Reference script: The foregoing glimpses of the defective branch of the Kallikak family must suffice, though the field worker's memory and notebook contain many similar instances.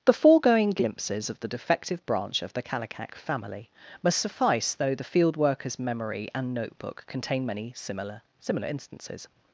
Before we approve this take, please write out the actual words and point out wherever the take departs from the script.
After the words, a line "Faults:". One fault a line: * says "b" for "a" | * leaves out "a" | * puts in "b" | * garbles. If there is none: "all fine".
The foregoing glimpses of the defective branch of the Kallikak family must suffice, though the field worker's memory and notebook contain many similar similar instances.
Faults:
* puts in "similar"